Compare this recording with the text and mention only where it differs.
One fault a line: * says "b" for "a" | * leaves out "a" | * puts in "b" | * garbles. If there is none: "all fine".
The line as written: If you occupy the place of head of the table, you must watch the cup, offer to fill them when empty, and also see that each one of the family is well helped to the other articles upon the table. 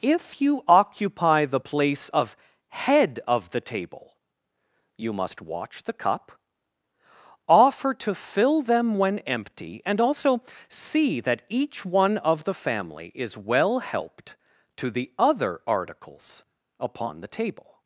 all fine